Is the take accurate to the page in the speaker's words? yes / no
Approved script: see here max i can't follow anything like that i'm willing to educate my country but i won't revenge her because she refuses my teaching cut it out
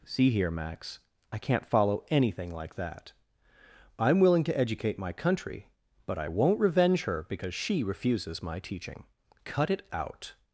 yes